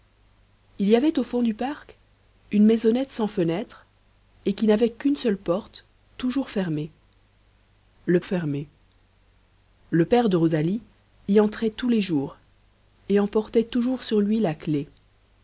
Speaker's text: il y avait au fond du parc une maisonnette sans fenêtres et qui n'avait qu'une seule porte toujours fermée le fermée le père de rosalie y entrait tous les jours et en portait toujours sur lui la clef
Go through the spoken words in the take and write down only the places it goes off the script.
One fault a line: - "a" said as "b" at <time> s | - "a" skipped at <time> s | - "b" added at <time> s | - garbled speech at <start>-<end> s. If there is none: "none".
none